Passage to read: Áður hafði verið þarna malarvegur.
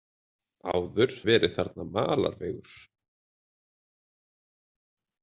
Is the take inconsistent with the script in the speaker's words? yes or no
yes